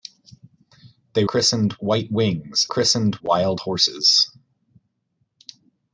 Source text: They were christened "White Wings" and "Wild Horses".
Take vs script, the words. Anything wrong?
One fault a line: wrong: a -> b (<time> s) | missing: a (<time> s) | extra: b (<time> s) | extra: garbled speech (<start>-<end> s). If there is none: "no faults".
missing: were (1.2 s)
wrong: and -> christened (2.7 s)